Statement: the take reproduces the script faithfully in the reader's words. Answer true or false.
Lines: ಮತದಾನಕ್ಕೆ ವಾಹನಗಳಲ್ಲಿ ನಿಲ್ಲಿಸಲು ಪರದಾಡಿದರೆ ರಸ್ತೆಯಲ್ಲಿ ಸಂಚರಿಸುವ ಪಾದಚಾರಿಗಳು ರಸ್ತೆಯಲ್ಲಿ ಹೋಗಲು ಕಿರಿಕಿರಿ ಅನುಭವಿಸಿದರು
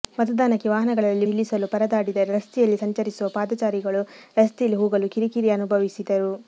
true